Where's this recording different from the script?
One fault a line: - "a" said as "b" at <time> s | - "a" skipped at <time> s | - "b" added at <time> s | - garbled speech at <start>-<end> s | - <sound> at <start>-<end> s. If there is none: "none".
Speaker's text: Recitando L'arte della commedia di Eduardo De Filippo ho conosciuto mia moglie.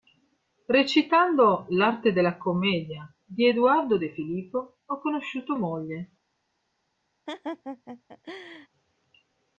- "mia" skipped at 5.6 s
- laugh at 7.3-8.7 s